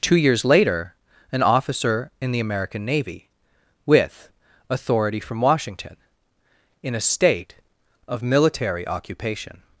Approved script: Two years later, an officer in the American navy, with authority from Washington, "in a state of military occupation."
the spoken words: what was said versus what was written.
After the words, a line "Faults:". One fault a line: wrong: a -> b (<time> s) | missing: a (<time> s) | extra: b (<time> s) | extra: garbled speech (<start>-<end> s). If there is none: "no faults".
Two years later, an officer in the American navy, with authority from Washington, "in a state of military occupation."
Faults:
no faults